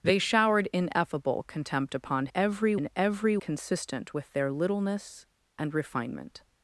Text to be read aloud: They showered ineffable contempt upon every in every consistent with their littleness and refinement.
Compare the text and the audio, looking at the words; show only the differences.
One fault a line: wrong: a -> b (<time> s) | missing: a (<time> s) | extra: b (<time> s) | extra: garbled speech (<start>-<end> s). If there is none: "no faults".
no faults